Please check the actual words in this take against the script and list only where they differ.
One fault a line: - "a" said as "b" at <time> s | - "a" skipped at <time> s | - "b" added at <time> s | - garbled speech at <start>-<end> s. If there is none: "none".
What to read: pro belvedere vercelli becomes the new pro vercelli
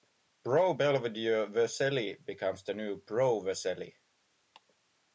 none